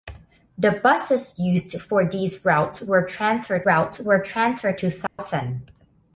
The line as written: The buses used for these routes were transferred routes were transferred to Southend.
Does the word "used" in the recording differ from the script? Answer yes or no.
no